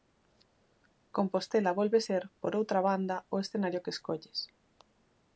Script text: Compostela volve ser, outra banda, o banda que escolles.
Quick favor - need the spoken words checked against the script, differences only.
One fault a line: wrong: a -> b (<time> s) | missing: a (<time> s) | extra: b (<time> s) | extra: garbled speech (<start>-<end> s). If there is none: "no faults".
extra: por (2.4 s)
wrong: banda -> escenario (3.4 s)